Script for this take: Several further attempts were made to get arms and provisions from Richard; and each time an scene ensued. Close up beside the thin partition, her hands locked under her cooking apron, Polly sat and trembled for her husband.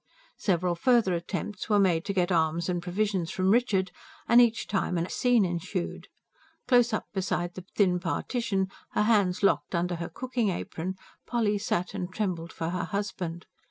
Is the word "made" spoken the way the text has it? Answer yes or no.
yes